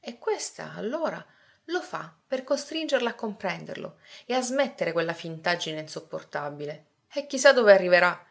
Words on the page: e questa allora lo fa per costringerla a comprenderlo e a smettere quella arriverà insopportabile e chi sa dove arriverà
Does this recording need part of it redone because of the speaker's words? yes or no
yes